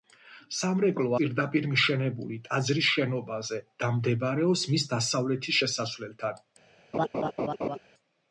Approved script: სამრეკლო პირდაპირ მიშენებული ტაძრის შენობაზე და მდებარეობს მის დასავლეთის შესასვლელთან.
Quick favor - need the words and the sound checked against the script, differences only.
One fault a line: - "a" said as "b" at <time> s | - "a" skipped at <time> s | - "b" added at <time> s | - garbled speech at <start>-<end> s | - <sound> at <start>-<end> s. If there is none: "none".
- laugh at 6.9-7.8 s